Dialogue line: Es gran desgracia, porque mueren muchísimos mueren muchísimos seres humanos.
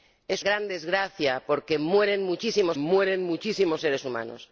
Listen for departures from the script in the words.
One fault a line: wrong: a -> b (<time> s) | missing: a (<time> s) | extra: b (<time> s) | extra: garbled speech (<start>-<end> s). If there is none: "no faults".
no faults